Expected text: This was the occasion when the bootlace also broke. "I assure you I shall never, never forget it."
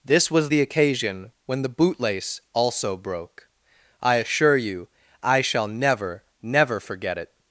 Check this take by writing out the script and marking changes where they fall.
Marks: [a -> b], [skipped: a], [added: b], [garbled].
This was the occasion when the bootlace also broke. "I assure you I shall never, never forget it."